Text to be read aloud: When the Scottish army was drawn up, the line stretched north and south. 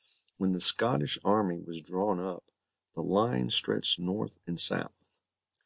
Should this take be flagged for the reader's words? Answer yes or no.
no